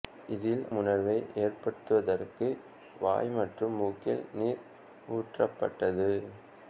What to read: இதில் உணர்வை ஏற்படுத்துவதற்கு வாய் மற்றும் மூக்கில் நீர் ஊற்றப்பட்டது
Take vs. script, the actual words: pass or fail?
pass